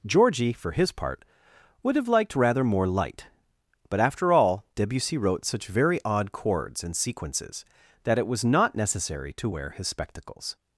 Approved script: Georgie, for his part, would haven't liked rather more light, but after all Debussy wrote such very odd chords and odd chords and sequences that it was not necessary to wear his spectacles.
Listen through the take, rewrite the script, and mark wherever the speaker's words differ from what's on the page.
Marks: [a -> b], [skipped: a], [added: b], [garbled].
Georgie, for his part, would [haven't -> have] liked rather more light, but after all Debussy wrote such very odd chords and [skipped: odd chords and] sequences that it was not necessary to wear his spectacles.